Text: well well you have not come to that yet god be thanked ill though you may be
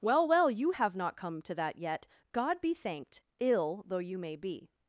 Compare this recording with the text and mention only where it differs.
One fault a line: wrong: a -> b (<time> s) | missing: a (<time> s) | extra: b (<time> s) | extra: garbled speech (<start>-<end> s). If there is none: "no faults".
no faults